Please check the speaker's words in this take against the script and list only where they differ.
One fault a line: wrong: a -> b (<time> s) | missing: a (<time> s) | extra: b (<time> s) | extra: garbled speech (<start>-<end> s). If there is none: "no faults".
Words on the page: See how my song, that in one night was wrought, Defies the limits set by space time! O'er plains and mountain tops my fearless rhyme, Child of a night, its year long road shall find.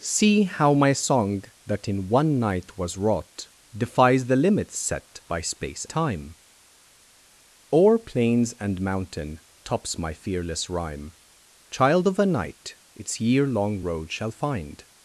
no faults